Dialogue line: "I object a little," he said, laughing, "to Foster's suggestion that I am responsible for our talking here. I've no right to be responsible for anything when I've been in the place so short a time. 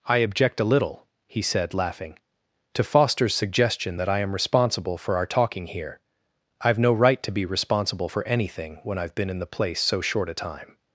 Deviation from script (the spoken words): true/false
false